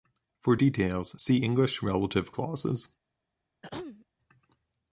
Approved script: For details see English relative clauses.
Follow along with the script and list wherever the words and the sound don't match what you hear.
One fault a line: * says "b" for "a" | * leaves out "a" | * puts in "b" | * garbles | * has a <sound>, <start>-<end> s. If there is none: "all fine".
* has a throat clearing, 3.6-4.1 s